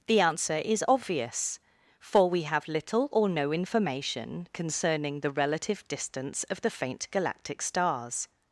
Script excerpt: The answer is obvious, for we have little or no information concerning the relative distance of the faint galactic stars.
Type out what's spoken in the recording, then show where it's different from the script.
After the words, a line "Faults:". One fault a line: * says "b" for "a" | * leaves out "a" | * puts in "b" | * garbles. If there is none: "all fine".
The answer is obvious, for we have little or no information concerning the relative distance of the faint galactic stars.
Faults:
all fine